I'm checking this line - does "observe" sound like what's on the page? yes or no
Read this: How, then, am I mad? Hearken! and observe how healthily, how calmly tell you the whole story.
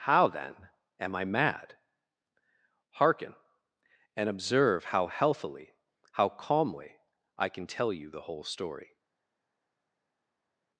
yes